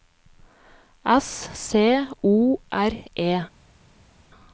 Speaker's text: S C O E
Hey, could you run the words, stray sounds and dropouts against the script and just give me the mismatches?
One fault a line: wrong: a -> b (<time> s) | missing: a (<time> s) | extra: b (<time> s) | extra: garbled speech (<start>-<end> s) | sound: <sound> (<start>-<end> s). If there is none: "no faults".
extra: R (2.7 s)